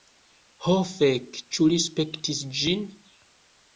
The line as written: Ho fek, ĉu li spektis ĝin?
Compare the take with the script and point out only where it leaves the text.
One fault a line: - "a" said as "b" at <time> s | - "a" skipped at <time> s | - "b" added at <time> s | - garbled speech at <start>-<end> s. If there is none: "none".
none